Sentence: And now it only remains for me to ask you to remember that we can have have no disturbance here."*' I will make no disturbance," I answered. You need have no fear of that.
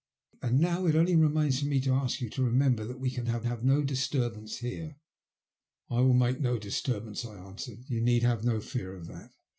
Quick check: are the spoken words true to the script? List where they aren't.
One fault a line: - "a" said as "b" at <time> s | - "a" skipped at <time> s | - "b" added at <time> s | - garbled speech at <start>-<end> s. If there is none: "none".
none